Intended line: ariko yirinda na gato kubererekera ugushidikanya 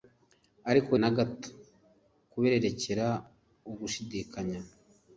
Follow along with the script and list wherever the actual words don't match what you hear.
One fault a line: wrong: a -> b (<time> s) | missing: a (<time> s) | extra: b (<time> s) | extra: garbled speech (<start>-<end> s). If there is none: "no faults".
missing: yirinda (0.9 s)